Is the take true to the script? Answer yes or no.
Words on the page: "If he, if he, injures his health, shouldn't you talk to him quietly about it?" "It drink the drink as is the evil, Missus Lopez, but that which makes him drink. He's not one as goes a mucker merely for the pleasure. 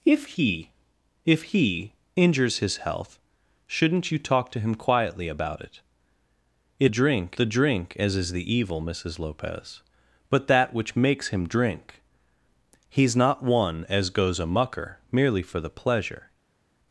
yes